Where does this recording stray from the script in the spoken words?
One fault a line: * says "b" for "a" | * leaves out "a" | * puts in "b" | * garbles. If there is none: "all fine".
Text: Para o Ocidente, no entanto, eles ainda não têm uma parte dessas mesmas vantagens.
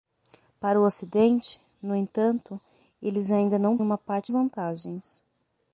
* leaves out "têm"
* leaves out "dessas mesmas"